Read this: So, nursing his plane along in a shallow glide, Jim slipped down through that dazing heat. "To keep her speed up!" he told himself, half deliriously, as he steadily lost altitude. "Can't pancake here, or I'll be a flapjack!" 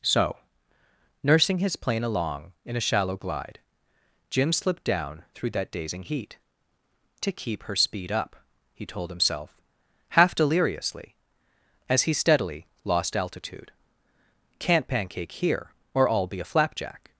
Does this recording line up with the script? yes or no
yes